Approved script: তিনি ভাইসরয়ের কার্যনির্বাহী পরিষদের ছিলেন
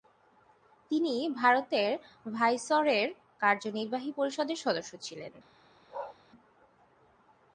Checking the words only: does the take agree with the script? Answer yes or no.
no